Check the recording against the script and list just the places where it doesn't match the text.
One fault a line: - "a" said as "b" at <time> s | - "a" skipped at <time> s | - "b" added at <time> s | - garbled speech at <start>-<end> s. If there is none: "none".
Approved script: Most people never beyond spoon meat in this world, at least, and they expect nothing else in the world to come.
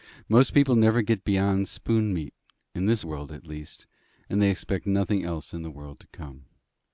- "get" added at 1.0 s